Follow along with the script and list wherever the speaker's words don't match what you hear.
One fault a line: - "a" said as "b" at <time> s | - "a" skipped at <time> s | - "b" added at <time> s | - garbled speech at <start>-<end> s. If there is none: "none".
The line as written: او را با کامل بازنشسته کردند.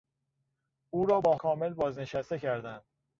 none